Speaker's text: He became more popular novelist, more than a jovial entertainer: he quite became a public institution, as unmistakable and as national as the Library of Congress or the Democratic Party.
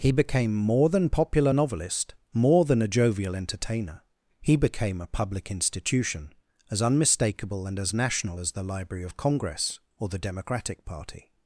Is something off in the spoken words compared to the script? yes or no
yes